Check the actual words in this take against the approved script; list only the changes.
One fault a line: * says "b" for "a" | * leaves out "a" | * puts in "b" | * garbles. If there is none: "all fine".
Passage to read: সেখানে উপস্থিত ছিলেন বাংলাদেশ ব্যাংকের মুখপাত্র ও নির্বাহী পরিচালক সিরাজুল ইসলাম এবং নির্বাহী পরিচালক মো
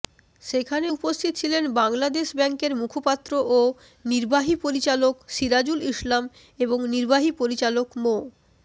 all fine